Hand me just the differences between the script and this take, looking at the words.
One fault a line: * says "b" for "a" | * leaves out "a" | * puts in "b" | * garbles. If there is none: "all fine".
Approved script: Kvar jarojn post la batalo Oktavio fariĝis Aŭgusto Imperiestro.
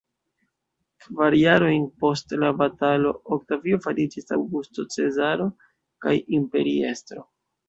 * puts in "Cezaro kaj"